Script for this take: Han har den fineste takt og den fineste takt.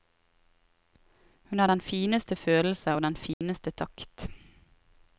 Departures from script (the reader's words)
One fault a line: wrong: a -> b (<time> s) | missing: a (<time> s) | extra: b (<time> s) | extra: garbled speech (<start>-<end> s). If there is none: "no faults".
wrong: Han -> Hun (1.4 s)
wrong: takt -> følelse (2.3 s)